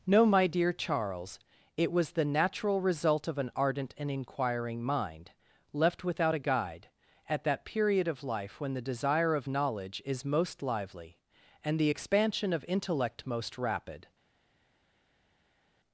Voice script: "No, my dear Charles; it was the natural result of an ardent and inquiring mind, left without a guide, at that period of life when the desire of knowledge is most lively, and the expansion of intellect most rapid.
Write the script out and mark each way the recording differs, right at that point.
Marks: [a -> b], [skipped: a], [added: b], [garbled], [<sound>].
"No, my dear Charles; it was the natural result of an ardent and inquiring mind, left without a guide, at that period of life when the desire of knowledge is most lively, and the expansion of intellect most rapid.